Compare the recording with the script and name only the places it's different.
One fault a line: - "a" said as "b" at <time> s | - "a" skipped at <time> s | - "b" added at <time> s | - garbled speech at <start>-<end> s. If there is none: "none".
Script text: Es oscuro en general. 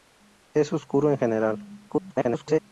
- garbled speech at 1.9-2.6 s